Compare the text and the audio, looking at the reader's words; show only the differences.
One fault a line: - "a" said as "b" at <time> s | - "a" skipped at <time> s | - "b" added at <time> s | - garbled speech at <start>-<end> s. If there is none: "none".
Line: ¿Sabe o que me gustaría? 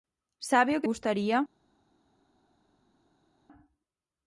- "me" skipped at 0.9 s